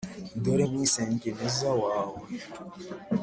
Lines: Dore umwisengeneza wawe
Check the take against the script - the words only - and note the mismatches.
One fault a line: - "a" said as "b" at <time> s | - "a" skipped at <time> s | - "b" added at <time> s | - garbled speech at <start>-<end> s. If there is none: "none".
none